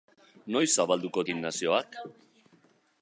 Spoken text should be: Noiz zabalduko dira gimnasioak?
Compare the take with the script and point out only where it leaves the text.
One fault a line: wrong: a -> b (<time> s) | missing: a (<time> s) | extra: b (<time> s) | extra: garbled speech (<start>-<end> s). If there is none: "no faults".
missing: dira (1.2 s)